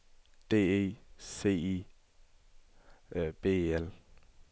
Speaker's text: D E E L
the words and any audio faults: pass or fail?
fail